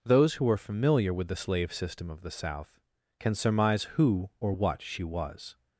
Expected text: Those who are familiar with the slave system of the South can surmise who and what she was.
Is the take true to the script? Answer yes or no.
no